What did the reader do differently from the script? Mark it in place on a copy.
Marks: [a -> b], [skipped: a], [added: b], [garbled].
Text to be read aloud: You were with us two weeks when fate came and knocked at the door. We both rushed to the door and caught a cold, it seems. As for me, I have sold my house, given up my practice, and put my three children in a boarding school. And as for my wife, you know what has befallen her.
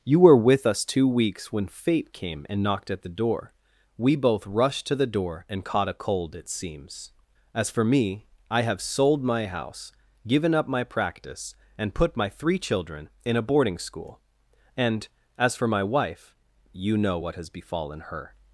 You were with us two weeks when fate came and knocked at the door. We both rushed to the door and caught a cold, it seems. As for me, I have sold my house, given up my practice, and put my three children in a boarding school. And as for my wife, you know what has befallen her.